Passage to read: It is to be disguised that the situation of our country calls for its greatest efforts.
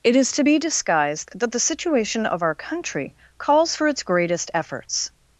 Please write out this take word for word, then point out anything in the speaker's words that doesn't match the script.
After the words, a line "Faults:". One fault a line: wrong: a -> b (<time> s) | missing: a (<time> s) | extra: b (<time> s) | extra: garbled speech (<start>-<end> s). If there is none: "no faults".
It is to be disguised that the situation of our country calls for its greatest efforts.
Faults:
no faults